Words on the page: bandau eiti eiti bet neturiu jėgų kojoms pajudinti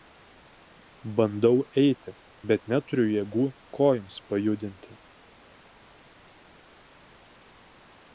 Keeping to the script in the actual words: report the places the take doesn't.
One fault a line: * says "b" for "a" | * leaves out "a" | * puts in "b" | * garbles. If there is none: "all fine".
* leaves out "eiti"